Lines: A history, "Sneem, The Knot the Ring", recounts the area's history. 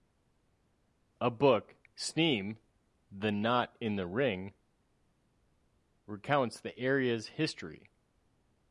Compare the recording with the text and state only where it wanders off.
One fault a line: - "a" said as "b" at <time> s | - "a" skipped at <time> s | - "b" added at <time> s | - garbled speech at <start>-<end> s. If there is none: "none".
- "history" said as "book" at 1.3 s
- "in" added at 3.8 s